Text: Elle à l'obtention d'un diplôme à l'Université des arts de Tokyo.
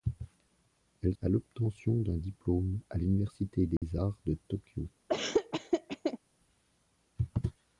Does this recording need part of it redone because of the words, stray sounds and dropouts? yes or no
yes